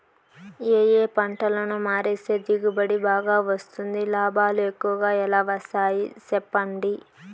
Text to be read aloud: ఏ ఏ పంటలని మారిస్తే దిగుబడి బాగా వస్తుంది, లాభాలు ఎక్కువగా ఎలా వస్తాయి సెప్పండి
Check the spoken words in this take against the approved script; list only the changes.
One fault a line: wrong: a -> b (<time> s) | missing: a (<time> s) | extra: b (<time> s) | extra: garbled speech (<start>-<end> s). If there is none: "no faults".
no faults